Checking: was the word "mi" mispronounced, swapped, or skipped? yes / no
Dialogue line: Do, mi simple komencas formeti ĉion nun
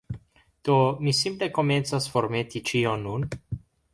no